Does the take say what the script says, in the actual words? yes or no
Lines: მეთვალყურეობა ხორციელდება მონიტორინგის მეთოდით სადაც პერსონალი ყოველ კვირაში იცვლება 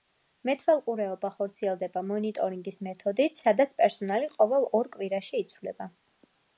no